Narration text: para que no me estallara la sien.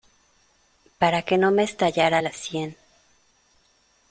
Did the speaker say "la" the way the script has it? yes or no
yes